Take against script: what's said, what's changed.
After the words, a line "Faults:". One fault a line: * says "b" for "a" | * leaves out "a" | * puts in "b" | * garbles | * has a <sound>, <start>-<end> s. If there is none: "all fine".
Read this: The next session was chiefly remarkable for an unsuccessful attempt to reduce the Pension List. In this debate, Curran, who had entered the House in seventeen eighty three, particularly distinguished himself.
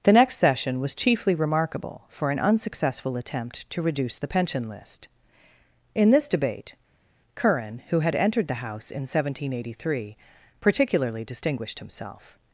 The next session was chiefly remarkable for an unsuccessful attempt to reduce the Pension List. In this debate, Curran, who had entered the House in seventeen eighty three, particularly distinguished himself.
Faults:
all fine